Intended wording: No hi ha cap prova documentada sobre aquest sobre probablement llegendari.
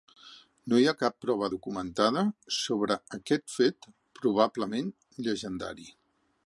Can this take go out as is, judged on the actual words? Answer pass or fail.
fail